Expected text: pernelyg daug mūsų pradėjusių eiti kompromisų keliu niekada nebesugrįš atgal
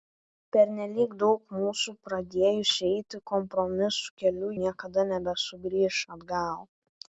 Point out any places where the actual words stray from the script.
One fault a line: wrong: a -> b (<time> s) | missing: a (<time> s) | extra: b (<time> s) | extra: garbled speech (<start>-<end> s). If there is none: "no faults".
no faults